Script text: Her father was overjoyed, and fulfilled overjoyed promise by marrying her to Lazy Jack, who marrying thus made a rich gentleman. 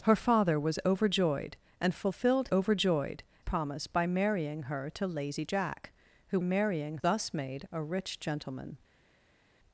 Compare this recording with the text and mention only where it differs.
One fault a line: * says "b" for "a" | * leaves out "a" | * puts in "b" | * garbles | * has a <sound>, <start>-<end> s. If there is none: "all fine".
all fine